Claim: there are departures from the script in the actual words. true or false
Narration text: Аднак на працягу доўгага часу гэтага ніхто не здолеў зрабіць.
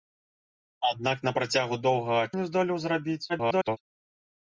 true